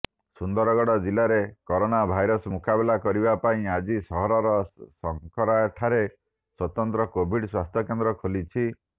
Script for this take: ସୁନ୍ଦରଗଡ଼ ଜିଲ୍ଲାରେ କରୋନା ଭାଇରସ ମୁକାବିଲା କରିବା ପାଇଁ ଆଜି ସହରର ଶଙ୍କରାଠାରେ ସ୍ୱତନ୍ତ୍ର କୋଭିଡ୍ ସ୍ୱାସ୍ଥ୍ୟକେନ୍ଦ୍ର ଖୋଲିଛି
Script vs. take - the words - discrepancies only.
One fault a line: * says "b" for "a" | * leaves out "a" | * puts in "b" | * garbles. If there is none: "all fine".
all fine